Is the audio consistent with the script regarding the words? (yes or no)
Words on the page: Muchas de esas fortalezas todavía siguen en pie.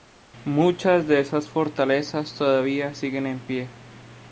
yes